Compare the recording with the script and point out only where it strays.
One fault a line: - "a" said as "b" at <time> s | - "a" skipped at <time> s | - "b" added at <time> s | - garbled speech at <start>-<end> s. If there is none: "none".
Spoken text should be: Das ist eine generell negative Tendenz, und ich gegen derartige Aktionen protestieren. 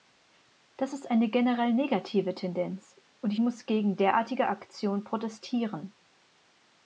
- "muss" added at 3.4 s